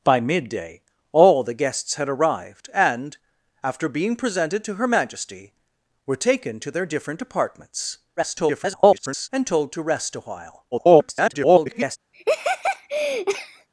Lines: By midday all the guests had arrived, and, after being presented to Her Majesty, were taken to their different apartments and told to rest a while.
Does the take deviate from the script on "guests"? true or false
false